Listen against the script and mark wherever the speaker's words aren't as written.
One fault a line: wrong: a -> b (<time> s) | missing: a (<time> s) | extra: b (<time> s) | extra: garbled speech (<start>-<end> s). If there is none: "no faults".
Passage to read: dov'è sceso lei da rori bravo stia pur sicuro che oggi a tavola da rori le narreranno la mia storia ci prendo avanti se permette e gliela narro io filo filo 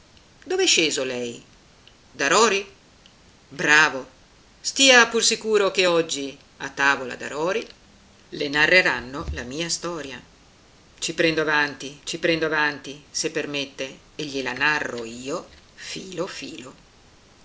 extra: ci prendo avanti (12.0 s)